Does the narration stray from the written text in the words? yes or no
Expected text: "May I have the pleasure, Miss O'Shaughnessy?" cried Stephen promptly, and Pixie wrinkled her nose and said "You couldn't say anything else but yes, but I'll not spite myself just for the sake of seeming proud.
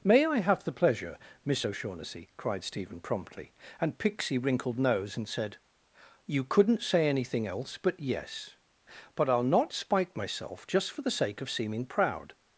yes